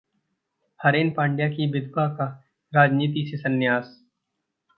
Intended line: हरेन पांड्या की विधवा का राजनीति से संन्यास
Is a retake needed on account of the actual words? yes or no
no